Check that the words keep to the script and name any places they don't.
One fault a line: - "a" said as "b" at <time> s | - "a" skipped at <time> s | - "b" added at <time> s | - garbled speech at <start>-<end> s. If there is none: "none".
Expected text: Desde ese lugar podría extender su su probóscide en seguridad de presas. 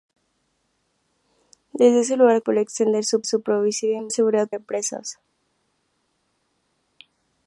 none